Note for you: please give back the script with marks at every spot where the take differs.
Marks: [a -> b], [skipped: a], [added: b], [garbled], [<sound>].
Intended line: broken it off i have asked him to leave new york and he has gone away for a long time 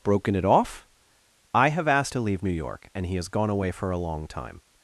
broken it off i have asked [skipped: him] to leave new york and he has gone away for a long time